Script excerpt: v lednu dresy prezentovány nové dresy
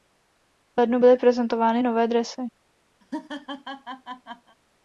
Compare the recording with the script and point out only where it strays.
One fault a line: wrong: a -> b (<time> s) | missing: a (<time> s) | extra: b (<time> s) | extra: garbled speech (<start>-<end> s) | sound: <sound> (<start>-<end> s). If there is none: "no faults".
wrong: dresy -> byly (1.0 s)
sound: laugh (3.0-4.6 s)